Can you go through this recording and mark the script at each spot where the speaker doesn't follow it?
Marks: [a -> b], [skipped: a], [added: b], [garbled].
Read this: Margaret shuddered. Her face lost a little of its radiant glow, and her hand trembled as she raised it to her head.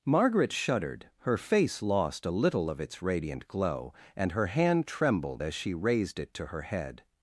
Margaret shuddered. Her face lost a little of its radiant glow, and her hand trembled as she raised it to her head.